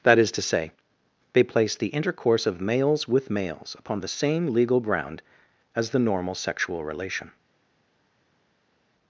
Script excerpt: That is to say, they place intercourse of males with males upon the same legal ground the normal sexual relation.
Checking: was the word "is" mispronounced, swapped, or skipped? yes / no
no